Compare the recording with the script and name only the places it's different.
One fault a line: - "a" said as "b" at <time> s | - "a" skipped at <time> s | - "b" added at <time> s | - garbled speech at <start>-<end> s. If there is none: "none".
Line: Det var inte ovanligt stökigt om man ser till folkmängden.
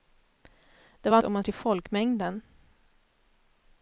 - "inte ovanligt stökigt" skipped at 1.2 s
- "ser" skipped at 1.4 s